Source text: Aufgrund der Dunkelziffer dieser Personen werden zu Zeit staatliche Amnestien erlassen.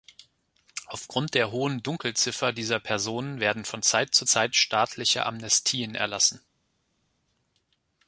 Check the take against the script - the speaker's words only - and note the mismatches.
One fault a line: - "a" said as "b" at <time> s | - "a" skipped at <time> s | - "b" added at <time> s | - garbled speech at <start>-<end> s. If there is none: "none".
- "hohen" added at 1.5 s
- "von Zeit" added at 3.6 s